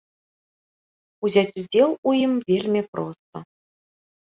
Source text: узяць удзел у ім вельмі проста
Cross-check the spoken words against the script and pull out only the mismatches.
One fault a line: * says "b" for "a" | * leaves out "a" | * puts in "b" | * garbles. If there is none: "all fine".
all fine